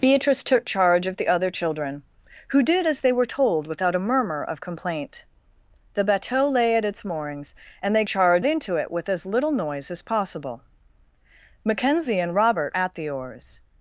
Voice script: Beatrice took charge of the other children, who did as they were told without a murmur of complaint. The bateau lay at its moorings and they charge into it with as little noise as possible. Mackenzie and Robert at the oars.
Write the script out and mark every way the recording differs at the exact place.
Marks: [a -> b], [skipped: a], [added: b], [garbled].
Beatrice took charge of the other children, who did as they were told without a murmur of complaint. The bateau lay at its moorings and they charge into it with as little noise as possible. Mackenzie and Robert at the oars.